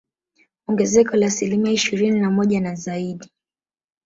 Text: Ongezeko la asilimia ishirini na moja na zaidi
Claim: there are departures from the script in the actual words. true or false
false